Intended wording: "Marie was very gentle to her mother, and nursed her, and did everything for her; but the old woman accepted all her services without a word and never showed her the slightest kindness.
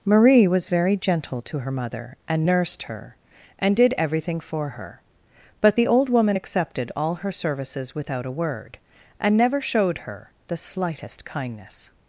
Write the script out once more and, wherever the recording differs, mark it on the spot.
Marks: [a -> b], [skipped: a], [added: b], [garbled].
"Marie was very gentle to her mother, and nursed her, and did everything for her; but the old woman accepted all her services without a word and never showed her the slightest kindness.